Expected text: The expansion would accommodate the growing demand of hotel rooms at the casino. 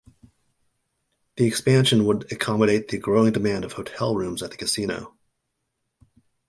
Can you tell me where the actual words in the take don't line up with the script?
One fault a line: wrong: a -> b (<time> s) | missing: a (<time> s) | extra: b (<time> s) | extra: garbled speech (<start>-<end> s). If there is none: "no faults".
no faults